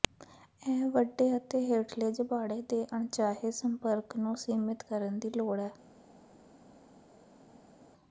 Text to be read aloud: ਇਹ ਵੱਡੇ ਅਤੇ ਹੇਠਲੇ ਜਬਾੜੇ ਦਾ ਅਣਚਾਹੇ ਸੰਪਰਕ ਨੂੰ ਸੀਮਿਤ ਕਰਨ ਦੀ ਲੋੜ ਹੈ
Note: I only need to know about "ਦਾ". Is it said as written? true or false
false